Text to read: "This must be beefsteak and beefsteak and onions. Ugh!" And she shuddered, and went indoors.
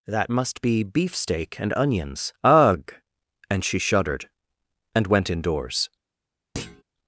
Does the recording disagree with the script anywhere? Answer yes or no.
yes